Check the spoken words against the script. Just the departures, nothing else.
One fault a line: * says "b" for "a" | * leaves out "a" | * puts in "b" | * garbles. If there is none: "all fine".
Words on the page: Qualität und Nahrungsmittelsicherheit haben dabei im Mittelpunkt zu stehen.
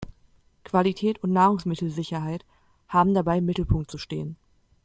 all fine